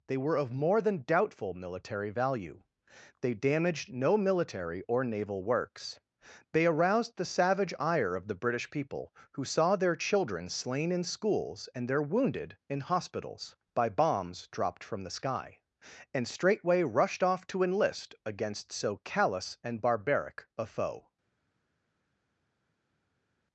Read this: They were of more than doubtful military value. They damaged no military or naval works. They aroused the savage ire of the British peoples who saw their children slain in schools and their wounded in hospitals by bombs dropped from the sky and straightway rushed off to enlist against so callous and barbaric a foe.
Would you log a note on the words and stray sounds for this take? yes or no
yes